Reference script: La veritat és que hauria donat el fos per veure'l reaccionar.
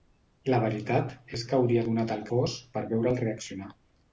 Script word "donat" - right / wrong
right